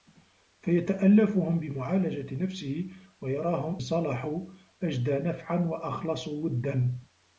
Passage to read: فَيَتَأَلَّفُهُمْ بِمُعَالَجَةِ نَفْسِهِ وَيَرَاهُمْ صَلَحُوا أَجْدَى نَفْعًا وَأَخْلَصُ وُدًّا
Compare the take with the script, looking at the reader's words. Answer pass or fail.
pass